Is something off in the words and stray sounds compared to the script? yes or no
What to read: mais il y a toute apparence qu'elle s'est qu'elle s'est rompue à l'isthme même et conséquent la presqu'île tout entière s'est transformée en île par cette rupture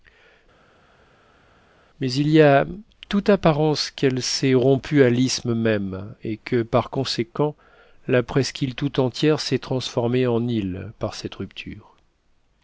yes